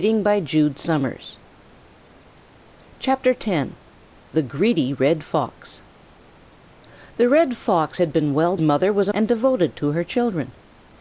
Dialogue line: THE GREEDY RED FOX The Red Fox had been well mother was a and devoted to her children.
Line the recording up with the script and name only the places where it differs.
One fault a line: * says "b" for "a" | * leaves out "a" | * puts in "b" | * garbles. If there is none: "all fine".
all fine